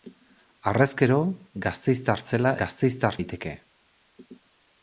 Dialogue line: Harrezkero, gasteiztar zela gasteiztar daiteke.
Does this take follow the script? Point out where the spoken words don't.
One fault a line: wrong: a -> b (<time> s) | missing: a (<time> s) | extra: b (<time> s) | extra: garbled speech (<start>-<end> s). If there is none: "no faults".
no faults